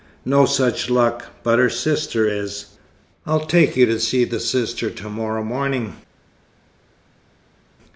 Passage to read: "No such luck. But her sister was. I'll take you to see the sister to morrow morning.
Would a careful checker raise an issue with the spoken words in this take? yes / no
yes